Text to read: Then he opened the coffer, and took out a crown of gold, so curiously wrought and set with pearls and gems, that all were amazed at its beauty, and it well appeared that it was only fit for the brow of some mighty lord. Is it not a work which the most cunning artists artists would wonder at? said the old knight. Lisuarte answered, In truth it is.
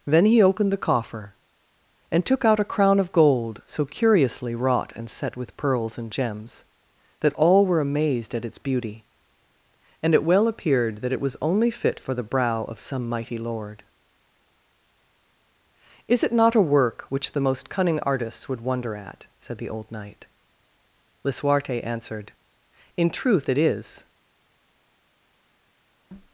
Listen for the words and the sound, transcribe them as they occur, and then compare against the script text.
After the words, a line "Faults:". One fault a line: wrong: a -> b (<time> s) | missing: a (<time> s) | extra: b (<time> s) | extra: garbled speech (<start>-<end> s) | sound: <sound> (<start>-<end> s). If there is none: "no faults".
Then he opened the coffer, and took out a crown of gold, so curiously wrought and set with pearls and gems, that all were amazed at its beauty, and it well appeared that it was only fit for the brow of some mighty lord. Is it not a work which the most cunning artists would wonder at? said the old knight. Lisuarte answered, In truth it is.
Faults:
missing: artists (18.5 s)